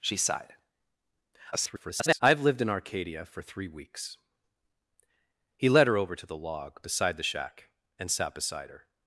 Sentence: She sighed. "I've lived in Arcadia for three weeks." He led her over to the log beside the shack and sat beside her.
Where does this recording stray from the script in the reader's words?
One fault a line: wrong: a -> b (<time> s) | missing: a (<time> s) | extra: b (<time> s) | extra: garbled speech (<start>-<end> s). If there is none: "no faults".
extra: garbled speech (1.5-2.2 s)